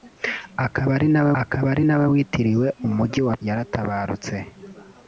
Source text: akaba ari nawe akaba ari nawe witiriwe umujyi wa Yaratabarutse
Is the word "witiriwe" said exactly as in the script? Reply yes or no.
yes